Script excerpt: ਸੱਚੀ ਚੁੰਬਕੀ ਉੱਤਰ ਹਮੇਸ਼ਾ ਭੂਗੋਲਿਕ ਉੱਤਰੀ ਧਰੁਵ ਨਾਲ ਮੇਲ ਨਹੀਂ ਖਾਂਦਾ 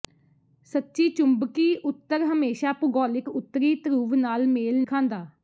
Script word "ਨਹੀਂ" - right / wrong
wrong